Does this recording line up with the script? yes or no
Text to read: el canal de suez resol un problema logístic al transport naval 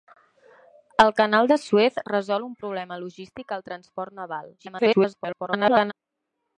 no